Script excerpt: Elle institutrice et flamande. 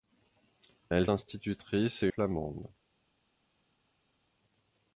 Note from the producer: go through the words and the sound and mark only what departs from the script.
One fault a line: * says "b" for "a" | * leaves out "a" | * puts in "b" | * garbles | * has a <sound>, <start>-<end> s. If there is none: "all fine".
all fine